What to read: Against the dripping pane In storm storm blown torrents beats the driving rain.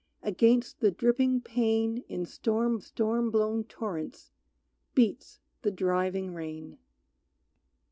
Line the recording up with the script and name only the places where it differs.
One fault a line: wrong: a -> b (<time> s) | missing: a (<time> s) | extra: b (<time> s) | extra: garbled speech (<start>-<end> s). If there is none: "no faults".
no faults